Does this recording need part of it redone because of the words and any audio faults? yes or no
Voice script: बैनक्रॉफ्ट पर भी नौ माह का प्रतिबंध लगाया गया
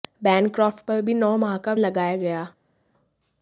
yes